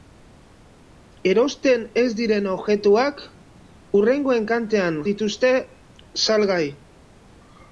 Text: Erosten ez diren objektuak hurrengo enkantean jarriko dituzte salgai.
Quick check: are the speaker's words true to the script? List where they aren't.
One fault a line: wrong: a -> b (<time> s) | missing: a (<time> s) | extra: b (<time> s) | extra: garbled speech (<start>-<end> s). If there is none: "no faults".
missing: jarriko (5.0 s)